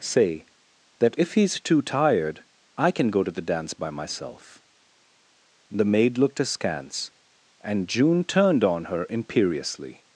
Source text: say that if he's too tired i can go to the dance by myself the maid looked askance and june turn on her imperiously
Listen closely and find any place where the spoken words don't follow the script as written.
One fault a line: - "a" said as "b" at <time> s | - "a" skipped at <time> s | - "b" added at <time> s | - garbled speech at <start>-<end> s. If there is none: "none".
- "turn" said as "turned" at 8.2 s